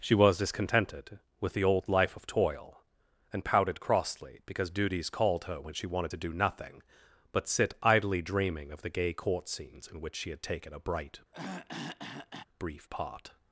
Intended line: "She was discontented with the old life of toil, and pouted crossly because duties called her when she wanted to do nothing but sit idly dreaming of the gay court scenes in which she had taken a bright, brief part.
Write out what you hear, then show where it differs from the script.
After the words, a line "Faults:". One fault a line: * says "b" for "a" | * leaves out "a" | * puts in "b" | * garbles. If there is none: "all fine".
"She was discontented with the old life of toil, and pouted crossly because duties called her when she wanted to do nothing but sit idly dreaming of the gay court scenes in which she had taken a bright, brief part.
Faults:
all fine